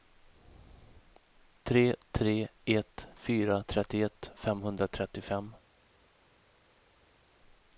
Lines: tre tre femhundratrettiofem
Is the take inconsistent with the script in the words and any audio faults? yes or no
yes